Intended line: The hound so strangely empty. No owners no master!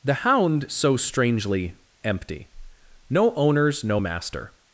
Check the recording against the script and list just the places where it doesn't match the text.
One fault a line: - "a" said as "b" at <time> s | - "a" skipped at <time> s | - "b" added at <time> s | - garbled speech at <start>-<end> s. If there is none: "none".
none